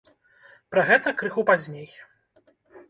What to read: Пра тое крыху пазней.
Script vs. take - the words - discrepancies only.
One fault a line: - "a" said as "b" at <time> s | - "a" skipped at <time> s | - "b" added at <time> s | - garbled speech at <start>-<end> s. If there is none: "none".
- "тое" said as "гэта" at 0.9 s